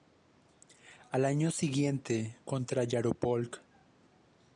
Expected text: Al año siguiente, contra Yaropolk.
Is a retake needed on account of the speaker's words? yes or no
no